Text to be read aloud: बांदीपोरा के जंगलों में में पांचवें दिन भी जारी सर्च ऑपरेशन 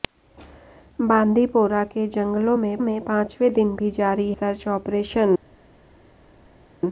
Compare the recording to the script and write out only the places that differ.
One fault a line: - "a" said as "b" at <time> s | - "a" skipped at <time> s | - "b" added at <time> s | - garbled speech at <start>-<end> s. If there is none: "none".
none